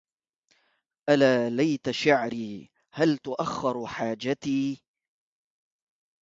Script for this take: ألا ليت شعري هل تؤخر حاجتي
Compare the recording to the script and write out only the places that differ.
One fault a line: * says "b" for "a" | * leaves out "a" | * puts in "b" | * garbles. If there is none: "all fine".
all fine